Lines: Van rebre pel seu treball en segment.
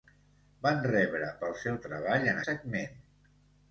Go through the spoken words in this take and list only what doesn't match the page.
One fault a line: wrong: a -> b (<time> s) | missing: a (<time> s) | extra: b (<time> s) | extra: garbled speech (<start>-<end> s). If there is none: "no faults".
no faults